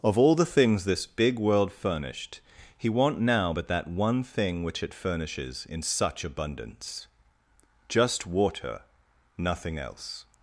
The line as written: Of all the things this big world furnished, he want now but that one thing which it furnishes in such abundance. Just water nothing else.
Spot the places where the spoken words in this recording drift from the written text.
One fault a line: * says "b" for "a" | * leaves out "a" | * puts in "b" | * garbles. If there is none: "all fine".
all fine